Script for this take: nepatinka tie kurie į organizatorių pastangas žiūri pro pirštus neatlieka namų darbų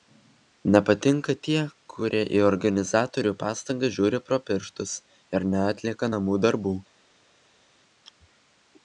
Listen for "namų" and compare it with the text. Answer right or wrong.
right